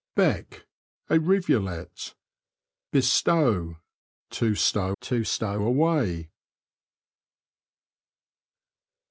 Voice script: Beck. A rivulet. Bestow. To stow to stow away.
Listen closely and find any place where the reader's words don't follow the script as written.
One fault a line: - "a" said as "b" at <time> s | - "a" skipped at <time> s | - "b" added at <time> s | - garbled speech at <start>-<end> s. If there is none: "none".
none